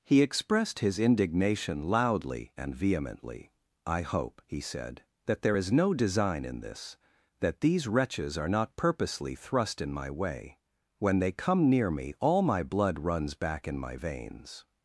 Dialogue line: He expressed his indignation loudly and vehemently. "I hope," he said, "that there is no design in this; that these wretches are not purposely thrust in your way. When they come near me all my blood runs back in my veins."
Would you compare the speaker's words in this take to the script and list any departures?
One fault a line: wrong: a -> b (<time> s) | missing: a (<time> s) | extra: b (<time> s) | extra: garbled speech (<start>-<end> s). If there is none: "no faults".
wrong: your -> my (9.9 s)